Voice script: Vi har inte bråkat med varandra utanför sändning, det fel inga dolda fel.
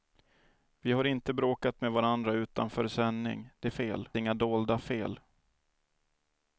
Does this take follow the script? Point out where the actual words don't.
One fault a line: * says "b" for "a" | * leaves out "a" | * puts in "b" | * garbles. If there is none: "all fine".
all fine